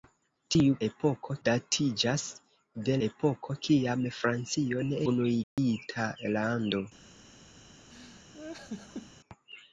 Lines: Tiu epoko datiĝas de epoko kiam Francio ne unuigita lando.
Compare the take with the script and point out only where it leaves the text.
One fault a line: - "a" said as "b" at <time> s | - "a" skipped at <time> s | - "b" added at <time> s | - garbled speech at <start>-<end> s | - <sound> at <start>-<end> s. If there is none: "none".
- dropout at 5.4-5.6 s
- laugh at 7.9-9.1 s